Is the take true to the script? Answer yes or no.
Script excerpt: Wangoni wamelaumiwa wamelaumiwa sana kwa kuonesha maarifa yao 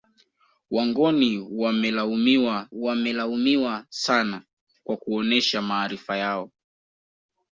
yes